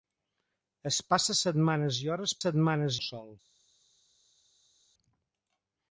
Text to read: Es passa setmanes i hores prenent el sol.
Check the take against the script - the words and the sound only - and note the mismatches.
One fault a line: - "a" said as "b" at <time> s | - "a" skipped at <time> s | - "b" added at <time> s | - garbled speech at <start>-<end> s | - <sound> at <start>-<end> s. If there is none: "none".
- "prenent" said as "setmanes" at 2.4 s